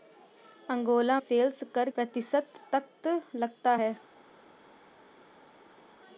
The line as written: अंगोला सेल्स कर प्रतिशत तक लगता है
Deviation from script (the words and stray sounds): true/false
false